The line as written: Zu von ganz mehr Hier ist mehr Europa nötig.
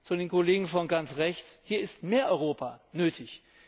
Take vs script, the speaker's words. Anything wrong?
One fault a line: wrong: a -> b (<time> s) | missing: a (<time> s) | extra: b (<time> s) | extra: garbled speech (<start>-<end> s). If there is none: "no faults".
extra: den Kollegen (0.1 s)
wrong: mehr -> rechts (1.2 s)